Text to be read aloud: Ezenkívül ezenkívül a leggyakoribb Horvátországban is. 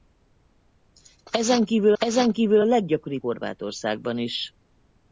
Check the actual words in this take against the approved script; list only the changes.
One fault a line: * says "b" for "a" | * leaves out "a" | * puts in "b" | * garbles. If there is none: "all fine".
all fine